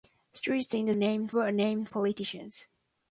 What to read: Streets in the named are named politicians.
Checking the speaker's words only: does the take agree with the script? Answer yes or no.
yes